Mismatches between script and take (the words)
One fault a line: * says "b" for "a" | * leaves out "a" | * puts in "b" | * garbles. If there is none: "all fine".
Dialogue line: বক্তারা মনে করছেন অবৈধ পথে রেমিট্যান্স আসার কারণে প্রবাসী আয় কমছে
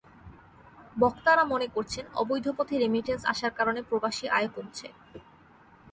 all fine